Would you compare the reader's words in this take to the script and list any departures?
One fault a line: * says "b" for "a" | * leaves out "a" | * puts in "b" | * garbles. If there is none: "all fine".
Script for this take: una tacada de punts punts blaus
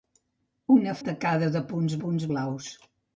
all fine